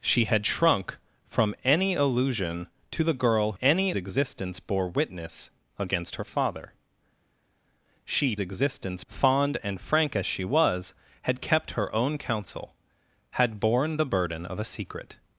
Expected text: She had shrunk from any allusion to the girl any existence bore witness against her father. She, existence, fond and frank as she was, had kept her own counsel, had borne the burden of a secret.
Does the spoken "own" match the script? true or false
true